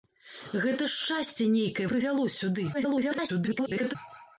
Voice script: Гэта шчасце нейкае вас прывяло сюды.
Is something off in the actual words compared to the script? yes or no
yes